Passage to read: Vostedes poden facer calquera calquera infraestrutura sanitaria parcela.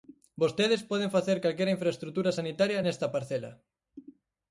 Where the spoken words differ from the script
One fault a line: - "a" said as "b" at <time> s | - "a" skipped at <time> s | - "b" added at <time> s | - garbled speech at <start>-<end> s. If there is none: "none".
- "calquera" skipped at 1.8 s
- "nesta" added at 2.8 s